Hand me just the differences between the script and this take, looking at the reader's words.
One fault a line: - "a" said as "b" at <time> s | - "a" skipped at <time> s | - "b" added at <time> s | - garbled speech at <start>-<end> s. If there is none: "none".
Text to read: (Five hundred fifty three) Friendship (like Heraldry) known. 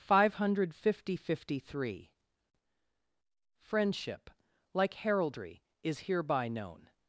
- "is hereby" added at 5.8 s